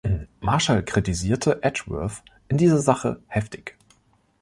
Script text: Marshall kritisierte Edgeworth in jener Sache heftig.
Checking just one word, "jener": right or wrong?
wrong